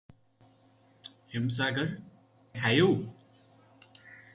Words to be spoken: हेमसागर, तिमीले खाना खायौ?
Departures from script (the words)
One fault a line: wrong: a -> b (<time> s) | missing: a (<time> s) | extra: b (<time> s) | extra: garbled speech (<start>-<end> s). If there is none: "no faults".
missing: तिमीले खाना (1.9 s)